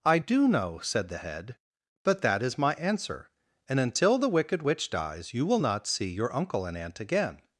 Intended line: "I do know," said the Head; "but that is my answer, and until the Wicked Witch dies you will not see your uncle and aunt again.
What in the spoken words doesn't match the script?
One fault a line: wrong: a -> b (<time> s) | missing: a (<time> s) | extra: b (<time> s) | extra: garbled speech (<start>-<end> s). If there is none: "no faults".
no faults